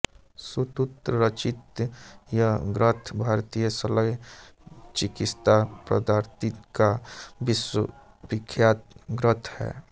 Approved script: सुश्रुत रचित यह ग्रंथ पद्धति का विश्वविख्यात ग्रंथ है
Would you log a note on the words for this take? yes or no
yes